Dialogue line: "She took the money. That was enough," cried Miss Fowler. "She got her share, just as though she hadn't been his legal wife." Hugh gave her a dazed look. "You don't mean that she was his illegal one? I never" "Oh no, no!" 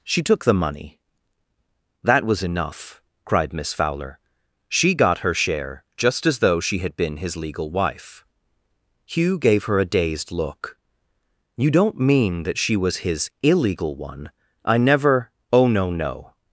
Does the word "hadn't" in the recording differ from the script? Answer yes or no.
yes